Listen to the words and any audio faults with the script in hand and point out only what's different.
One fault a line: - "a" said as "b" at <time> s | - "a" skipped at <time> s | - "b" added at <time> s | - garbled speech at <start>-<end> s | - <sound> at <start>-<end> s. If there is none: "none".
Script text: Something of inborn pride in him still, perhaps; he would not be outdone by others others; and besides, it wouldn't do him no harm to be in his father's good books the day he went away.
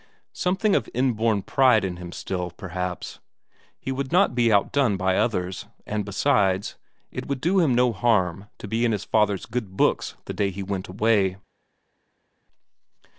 - "others" skipped at 5.7 s
- "wouldn't" said as "would" at 7.3 s